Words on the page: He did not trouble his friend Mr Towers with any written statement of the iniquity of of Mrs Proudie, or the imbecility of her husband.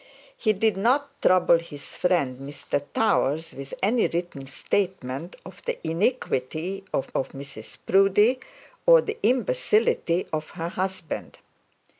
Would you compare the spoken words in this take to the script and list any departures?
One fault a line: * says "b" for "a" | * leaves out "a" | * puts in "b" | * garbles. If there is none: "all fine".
all fine